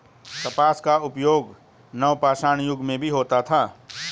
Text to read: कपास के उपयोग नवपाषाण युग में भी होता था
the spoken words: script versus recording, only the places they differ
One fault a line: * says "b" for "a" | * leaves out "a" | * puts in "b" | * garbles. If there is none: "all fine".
* says "का" for "के"